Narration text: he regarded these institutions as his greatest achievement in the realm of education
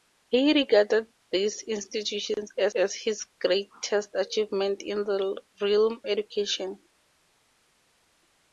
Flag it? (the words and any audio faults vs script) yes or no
yes